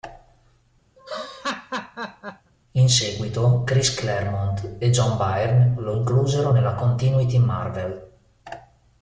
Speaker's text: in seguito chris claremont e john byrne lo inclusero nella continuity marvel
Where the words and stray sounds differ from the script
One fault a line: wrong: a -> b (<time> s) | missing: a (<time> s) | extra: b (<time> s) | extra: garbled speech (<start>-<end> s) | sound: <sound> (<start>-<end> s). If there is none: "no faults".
sound: laugh (1.0-2.5 s)